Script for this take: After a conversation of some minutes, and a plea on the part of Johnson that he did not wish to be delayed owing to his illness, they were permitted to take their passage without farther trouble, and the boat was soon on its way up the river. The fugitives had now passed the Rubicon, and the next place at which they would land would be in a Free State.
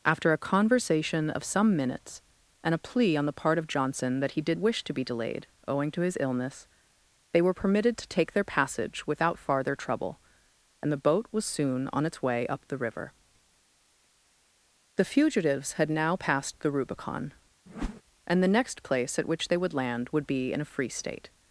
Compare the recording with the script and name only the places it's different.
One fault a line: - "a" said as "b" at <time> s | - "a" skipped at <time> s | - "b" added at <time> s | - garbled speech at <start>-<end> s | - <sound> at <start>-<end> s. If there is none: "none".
- "not" skipped at 4.6 s
- whoosh at 17.7-18.0 s